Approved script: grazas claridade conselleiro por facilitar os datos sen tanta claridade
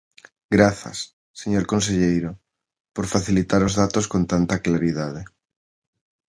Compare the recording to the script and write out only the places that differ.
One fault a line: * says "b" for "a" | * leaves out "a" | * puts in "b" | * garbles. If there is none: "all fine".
* says "señor" for "claridade"
* says "con" for "sen"